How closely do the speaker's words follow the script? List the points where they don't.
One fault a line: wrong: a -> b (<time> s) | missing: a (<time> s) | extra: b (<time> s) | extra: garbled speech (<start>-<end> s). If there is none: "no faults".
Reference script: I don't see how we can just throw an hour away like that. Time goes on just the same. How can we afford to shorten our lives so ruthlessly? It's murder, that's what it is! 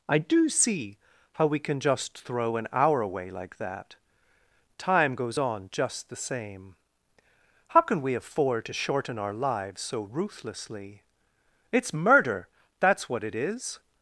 wrong: don't -> do (0.2 s)